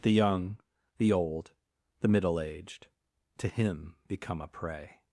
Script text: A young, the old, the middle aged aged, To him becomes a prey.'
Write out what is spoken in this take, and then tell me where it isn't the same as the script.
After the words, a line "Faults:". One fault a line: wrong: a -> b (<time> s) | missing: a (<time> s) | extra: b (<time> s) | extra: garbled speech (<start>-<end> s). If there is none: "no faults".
The young, the old, the middle aged, To him become a prey.'
Faults:
wrong: A -> The (0.0 s)
missing: aged (2.9 s)
wrong: becomes -> become (4.1 s)